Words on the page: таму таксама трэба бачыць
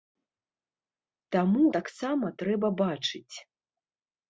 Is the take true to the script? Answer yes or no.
yes